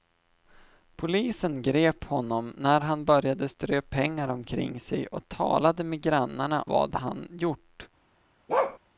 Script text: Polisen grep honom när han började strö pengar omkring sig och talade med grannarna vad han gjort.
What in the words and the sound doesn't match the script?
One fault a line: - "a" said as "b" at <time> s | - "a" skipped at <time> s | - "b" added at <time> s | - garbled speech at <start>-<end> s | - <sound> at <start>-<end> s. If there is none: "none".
- bark at 8.5-8.8 s